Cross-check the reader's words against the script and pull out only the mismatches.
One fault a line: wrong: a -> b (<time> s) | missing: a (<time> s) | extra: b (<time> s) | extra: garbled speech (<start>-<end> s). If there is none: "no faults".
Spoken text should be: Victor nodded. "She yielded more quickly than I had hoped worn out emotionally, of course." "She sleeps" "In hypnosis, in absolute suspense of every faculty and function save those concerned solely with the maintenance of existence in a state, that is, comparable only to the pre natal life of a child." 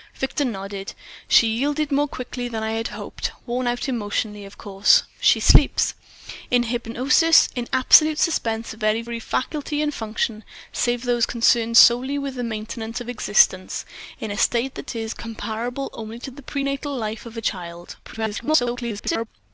extra: garbled speech (18.0-19.3 s)